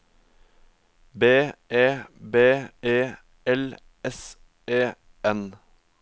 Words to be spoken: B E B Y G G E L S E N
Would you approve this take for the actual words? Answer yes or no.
no